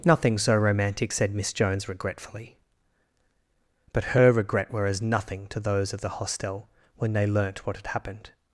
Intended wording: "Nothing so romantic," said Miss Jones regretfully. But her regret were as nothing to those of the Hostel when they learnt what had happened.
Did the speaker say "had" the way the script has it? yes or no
yes